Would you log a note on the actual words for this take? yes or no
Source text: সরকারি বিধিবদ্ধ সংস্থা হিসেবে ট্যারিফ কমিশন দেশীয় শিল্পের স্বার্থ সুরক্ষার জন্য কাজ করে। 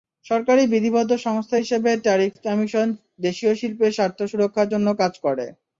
no